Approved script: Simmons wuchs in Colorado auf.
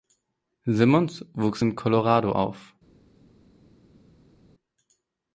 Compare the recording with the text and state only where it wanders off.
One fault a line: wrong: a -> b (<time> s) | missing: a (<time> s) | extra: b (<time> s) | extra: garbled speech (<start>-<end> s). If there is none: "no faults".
no faults